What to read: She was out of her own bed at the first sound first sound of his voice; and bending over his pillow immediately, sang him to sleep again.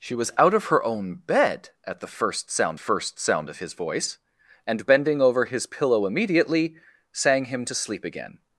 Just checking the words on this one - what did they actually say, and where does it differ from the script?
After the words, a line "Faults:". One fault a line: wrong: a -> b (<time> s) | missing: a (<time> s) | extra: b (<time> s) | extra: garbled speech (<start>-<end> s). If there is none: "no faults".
She was out of her own bed at the first sound first sound of his voice; and bending over his pillow immediately, sang him to sleep again.
Faults:
no faults